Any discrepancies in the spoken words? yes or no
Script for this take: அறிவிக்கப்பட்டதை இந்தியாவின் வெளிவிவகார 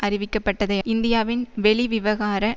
no